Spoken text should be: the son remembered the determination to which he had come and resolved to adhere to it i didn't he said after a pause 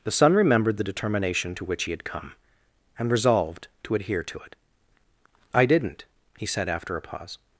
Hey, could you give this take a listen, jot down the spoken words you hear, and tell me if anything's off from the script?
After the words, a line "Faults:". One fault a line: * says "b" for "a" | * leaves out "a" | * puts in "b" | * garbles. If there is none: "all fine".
the son remembered the determination to which he had come and resolved to adhere to it i didn't he said after a pause
Faults:
all fine